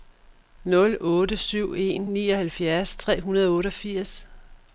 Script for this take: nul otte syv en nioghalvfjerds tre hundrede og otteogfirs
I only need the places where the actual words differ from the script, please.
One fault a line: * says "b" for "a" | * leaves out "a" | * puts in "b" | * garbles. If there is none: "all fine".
all fine